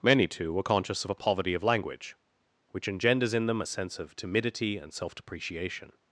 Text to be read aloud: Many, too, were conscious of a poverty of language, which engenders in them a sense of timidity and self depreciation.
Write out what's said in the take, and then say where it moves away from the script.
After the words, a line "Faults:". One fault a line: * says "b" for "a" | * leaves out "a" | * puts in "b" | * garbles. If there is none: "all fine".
Many, too, were conscious of a poverty of language, which engenders in them a sense of timidity and self depreciation.
Faults:
all fine